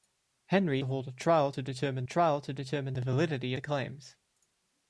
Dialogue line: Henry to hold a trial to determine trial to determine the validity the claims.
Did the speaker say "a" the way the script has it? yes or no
yes